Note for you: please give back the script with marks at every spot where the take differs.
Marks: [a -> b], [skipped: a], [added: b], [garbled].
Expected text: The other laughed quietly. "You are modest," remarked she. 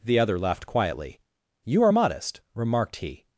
The other laughed quietly. "You are modest," remarked [she. -> he]